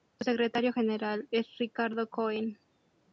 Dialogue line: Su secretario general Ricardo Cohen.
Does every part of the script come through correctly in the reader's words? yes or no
no